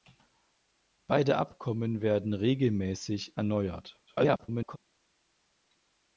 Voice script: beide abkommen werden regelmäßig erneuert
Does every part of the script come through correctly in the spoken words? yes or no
no